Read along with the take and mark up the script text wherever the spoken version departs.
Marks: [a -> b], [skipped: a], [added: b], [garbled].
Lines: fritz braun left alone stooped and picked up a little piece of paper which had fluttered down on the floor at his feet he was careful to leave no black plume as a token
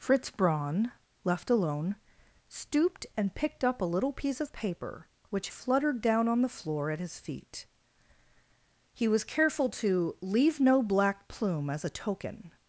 fritz braun left alone stooped and picked up a little piece of paper which [skipped: had] fluttered down on the floor at his feet he was careful to leave no black plume as a token